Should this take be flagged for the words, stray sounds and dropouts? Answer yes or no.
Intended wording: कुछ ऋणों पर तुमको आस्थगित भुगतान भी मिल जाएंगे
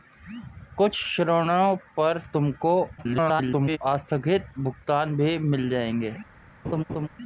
yes